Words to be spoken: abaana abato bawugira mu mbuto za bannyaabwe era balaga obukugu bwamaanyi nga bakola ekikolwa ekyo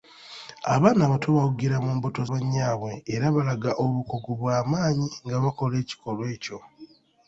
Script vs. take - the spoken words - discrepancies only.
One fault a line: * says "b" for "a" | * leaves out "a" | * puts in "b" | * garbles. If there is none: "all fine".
* leaves out "za"